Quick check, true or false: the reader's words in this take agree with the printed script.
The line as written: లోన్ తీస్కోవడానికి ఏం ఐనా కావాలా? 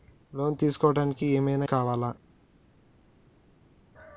true